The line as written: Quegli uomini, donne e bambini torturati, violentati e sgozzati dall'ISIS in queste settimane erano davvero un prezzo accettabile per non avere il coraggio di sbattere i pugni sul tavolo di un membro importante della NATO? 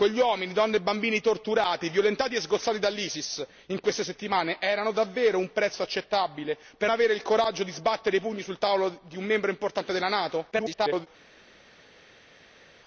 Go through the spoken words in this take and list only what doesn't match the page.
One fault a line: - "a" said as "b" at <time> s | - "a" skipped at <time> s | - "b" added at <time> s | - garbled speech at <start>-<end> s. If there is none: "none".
- "non" skipped at 6.9 s
- garbled speech at 10.5-11.1 s